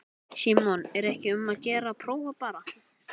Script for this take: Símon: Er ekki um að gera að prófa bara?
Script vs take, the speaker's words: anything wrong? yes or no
no